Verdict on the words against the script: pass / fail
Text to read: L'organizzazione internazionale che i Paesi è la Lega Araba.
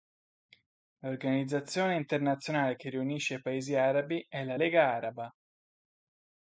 fail